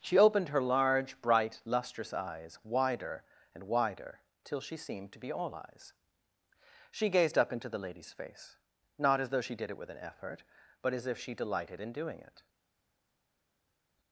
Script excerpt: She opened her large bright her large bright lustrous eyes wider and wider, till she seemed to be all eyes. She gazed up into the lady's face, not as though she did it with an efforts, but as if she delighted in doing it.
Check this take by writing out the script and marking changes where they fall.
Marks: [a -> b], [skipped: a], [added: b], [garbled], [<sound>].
She opened her large bright [skipped: her large bright] lustrous eyes wider and wider, till she seemed to be all eyes. She gazed up into the lady's face, not as though she did it with an [efforts, -> effort] but as if she delighted in doing it.